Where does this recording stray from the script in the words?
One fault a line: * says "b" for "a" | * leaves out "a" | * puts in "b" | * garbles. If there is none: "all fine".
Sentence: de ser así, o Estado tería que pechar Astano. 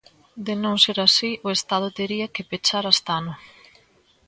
* puts in "non"